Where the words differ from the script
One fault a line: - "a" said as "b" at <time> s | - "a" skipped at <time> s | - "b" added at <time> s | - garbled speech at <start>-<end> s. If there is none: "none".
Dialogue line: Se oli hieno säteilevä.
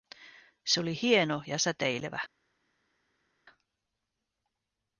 - "ja" added at 1.5 s